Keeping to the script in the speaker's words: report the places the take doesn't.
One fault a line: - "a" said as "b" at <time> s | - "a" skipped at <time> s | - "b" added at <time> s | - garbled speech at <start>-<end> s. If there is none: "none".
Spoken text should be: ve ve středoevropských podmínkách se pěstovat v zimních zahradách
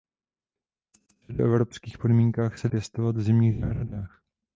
none